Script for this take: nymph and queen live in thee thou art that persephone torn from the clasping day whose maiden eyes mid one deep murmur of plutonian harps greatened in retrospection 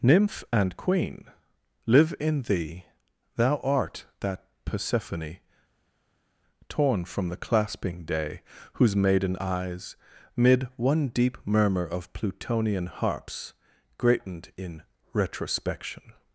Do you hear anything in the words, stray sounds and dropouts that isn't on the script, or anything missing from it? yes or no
no